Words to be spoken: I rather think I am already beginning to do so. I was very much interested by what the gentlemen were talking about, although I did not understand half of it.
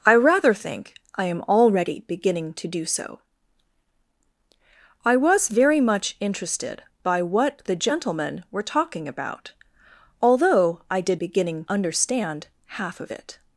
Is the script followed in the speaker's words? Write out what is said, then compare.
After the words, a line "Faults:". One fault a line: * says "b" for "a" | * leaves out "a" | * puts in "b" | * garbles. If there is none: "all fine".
I rather think I am already beginning to do so. I was very much interested by what the gentlemen were talking about, although I did beginning understand half of it.
Faults:
* says "beginning" for "not"